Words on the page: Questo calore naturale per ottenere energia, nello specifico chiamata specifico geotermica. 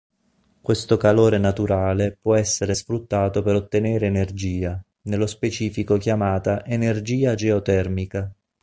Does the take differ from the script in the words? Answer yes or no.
yes